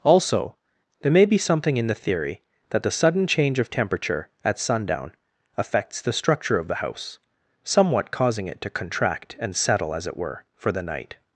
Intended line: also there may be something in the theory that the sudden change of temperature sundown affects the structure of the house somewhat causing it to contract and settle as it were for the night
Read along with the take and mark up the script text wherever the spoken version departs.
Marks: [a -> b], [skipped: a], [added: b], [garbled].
also there may be something in the theory that the sudden change of temperature [added: at] sundown affects the structure of the house somewhat causing it to contract and settle as it were for the night